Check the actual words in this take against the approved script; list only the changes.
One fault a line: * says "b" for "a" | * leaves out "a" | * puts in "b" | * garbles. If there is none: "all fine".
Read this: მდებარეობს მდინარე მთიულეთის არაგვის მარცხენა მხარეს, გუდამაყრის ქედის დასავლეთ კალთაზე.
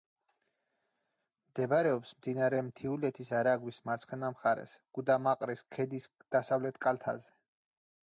all fine